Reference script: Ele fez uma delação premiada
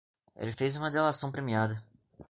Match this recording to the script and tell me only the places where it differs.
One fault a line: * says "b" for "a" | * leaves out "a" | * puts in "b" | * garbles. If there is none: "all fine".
all fine